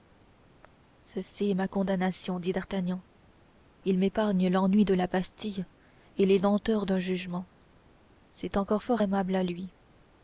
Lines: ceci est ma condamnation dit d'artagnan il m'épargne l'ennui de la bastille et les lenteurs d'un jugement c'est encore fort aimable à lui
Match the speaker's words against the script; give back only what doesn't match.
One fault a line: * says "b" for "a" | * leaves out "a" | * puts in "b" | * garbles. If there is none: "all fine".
all fine